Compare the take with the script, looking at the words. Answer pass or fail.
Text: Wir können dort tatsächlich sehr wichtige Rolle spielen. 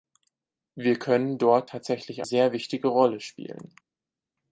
pass